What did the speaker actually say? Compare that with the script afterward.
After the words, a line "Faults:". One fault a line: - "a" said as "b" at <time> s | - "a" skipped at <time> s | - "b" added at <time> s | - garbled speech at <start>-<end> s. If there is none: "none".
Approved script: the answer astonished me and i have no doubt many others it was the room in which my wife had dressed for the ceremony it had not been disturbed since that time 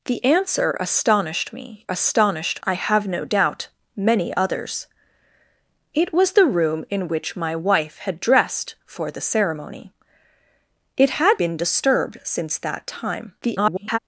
the answer astonished me astonished i have no doubt many others it was the room in which my wife had dressed for the ceremony it had been disturbed since that time [garbled]
Faults:
- "and" said as "astonished" at 1.9 s
- "not" skipped at 11.4 s
- garbled speech at 13.4-14.0 s